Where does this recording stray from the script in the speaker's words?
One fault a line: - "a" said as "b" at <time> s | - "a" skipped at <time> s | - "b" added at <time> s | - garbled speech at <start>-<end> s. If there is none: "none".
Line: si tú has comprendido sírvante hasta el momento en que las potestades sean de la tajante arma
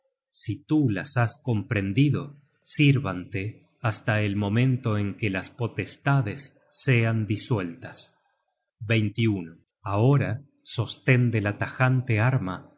- "las" added at 0.9 s
- "disueltas ahora sosten" added at 7.2 s